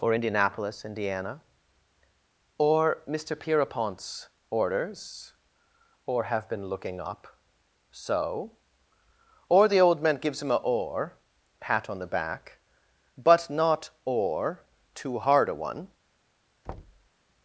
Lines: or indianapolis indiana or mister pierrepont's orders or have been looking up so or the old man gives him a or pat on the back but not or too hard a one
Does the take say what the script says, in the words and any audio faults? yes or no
no